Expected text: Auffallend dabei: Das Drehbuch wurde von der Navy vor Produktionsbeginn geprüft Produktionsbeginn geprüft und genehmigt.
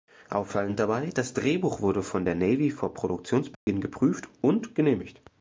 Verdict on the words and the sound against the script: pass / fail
fail